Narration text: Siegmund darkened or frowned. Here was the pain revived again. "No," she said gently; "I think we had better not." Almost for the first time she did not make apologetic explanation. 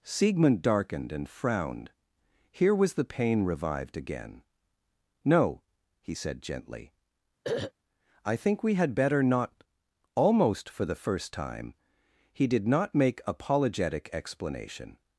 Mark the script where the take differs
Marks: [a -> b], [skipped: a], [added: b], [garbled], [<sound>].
Siegmund darkened [or -> and] frowned. Here was the pain revived again. "No," [she -> he] said gently; [throat clearing] "I think we had better not." Almost for the first time [she -> he] did not make apologetic explanation.